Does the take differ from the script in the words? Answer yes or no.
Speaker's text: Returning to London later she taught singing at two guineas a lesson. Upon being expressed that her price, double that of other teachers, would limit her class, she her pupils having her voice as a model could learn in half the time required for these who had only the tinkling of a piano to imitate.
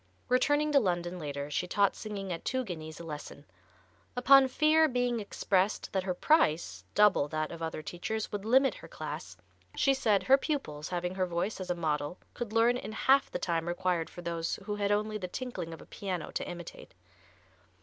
yes